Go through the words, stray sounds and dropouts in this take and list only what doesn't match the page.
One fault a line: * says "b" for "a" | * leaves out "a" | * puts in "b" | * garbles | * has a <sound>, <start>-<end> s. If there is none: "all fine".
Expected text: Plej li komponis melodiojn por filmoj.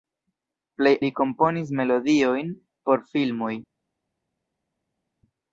all fine